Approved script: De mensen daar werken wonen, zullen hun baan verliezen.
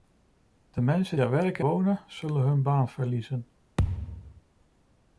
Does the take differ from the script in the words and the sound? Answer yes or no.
yes